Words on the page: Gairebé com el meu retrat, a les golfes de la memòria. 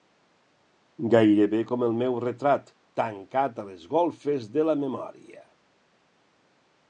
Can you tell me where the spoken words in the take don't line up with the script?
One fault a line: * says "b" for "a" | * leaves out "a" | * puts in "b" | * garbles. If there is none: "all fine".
* puts in "tancat"